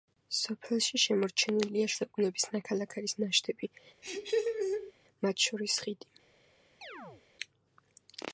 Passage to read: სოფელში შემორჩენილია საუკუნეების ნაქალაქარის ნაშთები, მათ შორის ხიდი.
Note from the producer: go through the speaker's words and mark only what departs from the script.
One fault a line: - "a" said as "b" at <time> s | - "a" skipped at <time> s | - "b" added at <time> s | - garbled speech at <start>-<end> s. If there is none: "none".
none